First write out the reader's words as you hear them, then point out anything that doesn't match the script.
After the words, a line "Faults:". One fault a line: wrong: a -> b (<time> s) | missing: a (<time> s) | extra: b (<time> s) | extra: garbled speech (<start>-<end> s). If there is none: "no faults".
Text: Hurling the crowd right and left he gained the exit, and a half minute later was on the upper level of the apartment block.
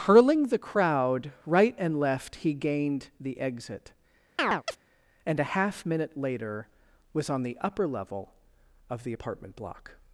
Hurling the crowd right and left he gained the exit, and a half minute later was on the upper level of the apartment block.
Faults:
no faults